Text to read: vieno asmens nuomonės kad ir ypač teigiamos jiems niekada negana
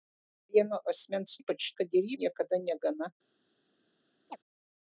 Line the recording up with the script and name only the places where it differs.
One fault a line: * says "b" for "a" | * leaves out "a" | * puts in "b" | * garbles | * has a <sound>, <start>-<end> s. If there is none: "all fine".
* says "ypač" for "nuomonės"
* leaves out "ypač teigiamos jiems"
* has a chirp, 4.3-4.4 s